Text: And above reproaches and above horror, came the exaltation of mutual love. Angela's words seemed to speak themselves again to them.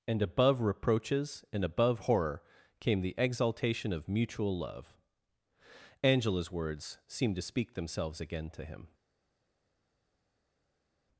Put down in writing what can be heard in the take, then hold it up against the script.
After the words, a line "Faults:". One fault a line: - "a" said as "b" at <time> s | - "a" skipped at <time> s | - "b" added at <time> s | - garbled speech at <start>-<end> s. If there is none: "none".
And above reproaches and above horror, came the exaltation of mutual love. Angela's words seemed to speak themselves again to him.
Faults:
- "them" said as "him" at 8.6 s